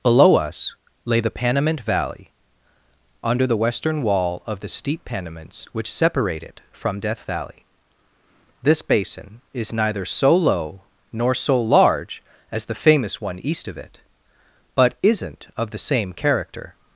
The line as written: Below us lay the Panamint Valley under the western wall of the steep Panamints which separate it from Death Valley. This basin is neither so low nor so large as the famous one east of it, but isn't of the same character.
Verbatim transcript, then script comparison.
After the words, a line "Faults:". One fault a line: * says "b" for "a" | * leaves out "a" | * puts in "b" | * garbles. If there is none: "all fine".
Below us lay the Panamint Valley under the western wall of the steep Panamints which separate it from Death Valley. This basin is neither so low nor so large as the famous one east of it, but isn't of the same character.
Faults:
all fine